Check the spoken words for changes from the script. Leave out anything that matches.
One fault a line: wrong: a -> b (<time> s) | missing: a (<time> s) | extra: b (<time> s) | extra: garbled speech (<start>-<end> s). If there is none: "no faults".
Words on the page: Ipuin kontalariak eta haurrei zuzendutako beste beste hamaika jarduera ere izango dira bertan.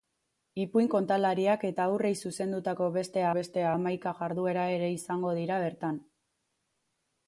no faults